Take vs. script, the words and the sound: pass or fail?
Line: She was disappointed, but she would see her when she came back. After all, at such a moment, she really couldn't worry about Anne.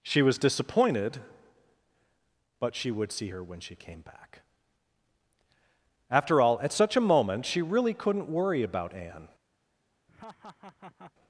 fail